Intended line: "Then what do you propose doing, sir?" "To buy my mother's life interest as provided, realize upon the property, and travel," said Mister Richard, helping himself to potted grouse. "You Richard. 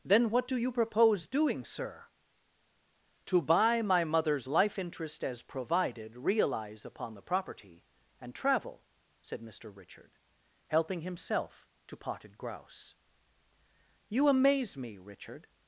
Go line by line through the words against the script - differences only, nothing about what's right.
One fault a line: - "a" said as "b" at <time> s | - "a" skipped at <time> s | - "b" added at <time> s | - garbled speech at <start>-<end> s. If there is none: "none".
- "amaze me" added at 14.3 s